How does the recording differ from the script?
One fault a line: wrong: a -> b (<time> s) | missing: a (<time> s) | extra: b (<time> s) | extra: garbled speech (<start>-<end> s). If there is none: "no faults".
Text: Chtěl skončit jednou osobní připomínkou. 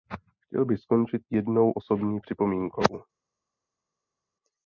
extra: bych (0.7 s)